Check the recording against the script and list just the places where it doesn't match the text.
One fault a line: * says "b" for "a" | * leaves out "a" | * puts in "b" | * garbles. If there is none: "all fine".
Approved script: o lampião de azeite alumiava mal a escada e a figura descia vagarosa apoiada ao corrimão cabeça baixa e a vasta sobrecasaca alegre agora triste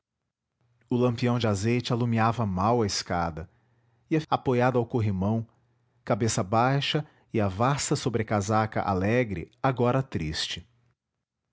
* leaves out "figura descia vagarosa"